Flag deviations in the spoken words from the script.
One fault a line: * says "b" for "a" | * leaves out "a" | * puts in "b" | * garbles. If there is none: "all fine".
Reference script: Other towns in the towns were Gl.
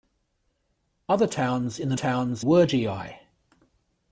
all fine